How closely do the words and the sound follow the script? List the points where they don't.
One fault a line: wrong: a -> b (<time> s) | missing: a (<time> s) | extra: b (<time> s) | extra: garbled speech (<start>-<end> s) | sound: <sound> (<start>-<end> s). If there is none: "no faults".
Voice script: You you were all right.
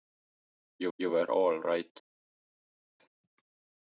no faults